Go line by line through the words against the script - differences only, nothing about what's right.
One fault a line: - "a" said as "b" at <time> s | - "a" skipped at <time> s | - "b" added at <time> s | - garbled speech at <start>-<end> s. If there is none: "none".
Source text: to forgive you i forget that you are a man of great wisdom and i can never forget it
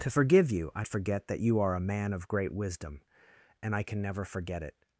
none